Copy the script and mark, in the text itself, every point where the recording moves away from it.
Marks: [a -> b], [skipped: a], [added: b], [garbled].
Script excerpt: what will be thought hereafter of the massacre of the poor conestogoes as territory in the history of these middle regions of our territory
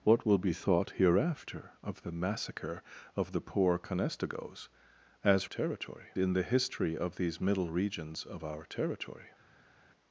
what will be thought hereafter of the massacre of the poor conestogoes as territory in the history of these middle regions of our territory